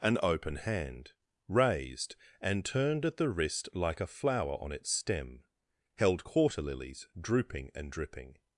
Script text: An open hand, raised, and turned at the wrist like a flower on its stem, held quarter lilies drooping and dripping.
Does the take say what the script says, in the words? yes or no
yes